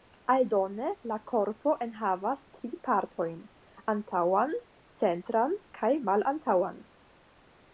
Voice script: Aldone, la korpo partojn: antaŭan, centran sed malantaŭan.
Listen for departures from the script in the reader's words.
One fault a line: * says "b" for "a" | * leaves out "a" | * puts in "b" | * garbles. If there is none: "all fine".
* puts in "enhavas tri"
* says "kaj" for "sed"